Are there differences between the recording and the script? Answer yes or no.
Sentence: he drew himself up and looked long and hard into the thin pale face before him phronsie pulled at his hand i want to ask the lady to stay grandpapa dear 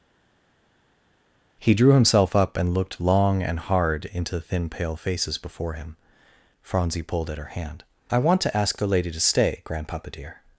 yes